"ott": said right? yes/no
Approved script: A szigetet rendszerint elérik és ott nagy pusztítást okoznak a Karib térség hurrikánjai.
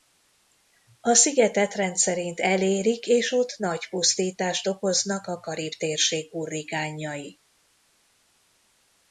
yes